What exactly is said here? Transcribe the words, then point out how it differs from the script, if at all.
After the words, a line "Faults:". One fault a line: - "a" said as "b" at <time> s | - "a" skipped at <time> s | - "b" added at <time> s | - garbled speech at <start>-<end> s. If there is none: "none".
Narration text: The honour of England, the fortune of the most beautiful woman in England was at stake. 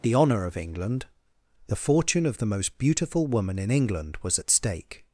The honour of England, the fortune of the most beautiful woman in England was at stake.
Faults:
none